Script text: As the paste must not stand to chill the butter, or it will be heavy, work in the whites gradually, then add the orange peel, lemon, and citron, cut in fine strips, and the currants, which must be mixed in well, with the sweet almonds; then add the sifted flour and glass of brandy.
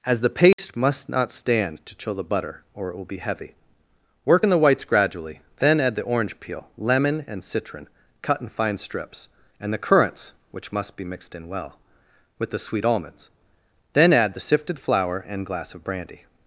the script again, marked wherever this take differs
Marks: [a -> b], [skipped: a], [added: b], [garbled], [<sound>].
As the paste [dropout] must not stand to chill the butter, or it will be heavy, work in the whites gradually, then add the orange peel, lemon, and citron, cut in fine strips, and the currants, which must be mixed in well, with the sweet almonds; then add the sifted flour and glass of brandy.